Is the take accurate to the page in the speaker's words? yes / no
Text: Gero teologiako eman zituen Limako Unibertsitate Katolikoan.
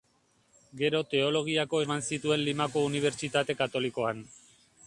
yes